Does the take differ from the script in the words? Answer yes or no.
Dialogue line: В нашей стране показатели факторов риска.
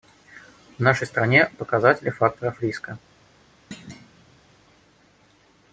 no